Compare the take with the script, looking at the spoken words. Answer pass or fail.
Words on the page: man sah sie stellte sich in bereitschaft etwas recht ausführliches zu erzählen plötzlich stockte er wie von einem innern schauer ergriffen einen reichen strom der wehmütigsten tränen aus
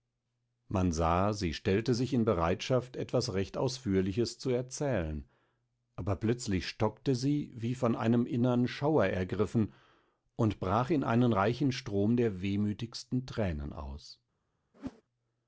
fail